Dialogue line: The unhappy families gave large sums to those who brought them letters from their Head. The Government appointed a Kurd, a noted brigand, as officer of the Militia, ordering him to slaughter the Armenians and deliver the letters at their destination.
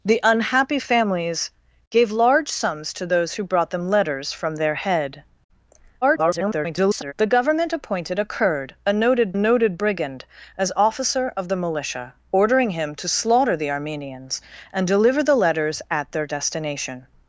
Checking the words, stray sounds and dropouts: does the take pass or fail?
fail